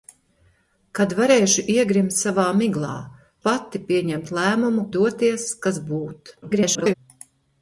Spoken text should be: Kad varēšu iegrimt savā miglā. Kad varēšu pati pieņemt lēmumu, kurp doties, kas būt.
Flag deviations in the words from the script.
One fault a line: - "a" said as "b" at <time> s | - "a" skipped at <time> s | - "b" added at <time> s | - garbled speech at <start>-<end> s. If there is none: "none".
- "Kad varēšu" skipped at 2.9 s
- "kurp" skipped at 4.9 s
- garbled speech at 6.4-6.9 s